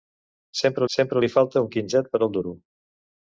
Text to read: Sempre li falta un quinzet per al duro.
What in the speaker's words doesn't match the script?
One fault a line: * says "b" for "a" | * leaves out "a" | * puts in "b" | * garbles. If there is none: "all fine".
* puts in "sempre"